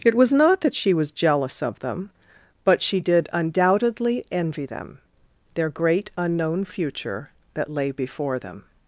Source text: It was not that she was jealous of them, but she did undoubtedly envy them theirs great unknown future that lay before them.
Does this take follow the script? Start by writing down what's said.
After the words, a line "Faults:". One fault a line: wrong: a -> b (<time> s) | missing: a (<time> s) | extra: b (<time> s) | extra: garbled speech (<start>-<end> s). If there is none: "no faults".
It was not that she was jealous of them, but she did undoubtedly envy them their great unknown future that lay before them.
Faults:
wrong: theirs -> their (5.5 s)